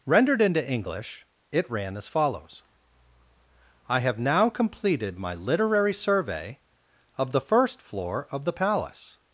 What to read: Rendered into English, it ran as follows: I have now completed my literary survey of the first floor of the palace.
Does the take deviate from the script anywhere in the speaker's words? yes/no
no